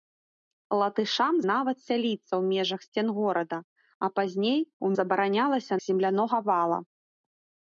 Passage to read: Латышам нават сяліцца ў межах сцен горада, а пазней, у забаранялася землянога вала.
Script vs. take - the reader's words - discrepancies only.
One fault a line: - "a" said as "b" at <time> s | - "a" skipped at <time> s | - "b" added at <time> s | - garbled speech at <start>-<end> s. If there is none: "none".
none